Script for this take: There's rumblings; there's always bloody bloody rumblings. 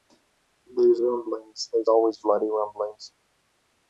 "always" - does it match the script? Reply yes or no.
yes